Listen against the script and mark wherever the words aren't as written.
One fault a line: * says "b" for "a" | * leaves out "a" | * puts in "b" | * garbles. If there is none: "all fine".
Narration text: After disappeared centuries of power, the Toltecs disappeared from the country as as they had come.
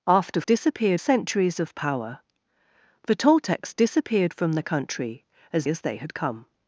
all fine